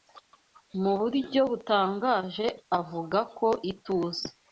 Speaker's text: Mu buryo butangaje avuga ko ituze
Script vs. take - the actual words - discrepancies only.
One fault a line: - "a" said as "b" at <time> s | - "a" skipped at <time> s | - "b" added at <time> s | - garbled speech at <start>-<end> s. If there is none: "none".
none